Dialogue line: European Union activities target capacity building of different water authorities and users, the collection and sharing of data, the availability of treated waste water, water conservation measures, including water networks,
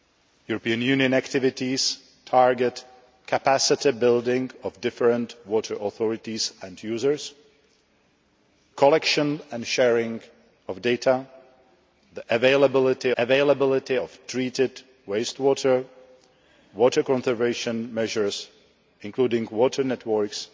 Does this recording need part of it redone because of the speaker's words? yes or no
yes